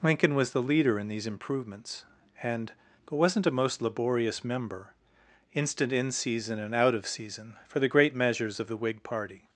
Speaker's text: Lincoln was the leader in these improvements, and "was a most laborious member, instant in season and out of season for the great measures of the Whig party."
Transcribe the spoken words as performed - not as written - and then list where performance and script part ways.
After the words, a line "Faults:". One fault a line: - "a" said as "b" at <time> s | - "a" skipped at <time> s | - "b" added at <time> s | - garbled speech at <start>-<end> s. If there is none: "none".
Lincoln was the leader in these improvements, and "wasn't a most laborious member, instant in season and out of season for the great measures of the Whig party."
Faults:
- "was" said as "wasn't" at 3.1 s